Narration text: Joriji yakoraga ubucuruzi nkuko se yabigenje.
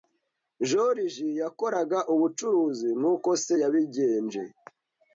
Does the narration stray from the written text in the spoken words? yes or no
no